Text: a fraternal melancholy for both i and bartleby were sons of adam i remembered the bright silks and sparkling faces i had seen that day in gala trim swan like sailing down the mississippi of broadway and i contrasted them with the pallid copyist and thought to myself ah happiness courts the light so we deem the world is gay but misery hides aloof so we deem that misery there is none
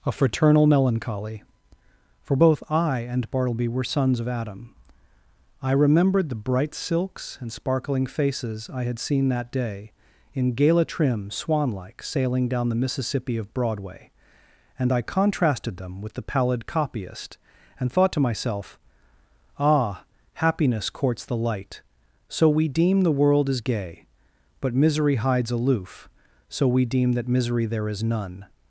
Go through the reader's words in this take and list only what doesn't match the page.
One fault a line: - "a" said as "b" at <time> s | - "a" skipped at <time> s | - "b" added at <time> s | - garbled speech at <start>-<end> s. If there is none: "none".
none